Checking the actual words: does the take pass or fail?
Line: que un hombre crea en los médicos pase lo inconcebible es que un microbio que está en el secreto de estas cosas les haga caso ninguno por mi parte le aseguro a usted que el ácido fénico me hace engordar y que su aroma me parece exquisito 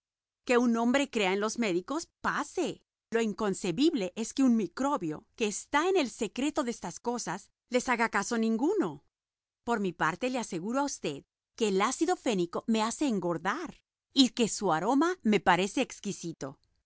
pass